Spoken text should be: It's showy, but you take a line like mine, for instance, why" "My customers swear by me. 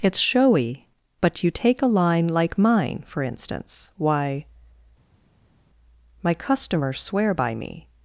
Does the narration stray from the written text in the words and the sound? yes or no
no